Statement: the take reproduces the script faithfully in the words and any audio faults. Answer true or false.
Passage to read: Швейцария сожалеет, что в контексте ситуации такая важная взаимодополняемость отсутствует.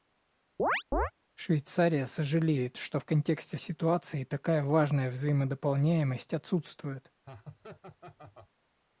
false